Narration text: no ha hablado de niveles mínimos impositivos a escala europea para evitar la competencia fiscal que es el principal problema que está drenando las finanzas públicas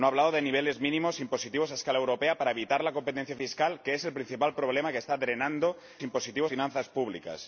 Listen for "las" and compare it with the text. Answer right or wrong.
wrong